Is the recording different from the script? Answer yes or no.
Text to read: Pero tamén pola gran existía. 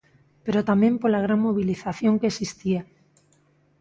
yes